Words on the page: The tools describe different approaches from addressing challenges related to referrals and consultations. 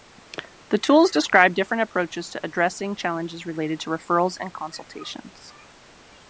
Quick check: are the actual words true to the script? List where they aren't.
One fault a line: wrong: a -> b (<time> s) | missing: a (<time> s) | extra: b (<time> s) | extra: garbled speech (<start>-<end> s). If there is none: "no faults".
wrong: from -> to (2.3 s)